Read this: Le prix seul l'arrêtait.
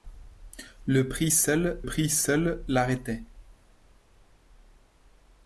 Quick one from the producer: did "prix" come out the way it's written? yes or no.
yes